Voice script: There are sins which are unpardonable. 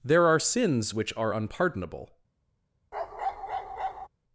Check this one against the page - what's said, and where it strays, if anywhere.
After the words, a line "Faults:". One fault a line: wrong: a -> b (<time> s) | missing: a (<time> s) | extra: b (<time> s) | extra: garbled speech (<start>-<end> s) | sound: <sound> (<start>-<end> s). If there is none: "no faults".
There are sins which are unpardonable.
Faults:
sound: bark (2.9-4.1 s)